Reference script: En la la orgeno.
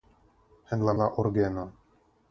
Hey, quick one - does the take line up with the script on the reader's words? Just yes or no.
yes